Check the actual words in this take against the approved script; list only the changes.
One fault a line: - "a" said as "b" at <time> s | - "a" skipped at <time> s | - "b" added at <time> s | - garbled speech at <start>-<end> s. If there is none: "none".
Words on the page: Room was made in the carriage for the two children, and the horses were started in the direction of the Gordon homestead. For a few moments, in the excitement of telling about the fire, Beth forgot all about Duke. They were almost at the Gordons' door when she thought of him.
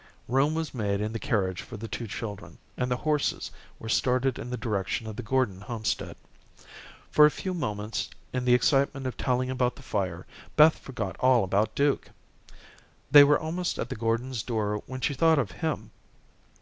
none